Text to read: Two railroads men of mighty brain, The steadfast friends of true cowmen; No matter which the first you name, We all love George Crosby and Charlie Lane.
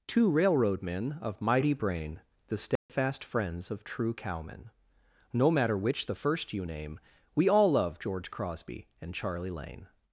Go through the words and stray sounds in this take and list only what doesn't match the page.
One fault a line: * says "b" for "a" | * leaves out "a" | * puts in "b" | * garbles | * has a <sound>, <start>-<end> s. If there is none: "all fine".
* says "railroad" for "railroads"
* has a dropout, 2.8-2.9 s